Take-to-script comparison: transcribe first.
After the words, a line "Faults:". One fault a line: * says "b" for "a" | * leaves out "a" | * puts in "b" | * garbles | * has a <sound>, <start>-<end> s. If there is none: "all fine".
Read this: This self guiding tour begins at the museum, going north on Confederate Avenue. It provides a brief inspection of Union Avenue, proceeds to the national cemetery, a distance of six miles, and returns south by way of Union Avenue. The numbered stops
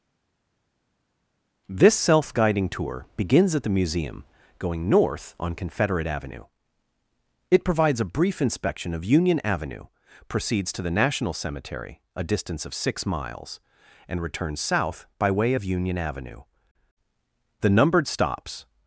This self guiding tour begins at the museum, going north on Confederate Avenue. It provides a brief inspection of Union Avenue, proceeds to the national cemetery, a distance of six miles, and returns south by way of Union Avenue. The numbered stops
Faults:
all fine